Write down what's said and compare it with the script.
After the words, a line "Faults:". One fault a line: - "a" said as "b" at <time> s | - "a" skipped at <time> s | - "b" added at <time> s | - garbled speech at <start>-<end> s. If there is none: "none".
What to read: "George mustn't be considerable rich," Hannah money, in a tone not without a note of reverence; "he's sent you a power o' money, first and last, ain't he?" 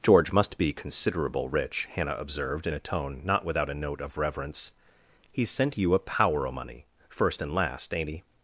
"George must be considerable rich," Hannah observed, in a tone not without a note of reverence; "he's sent you a power o' money, first and last, ain't he?"
Faults:
- "mustn't" said as "must" at 0.3 s
- "money" said as "observed" at 2.1 s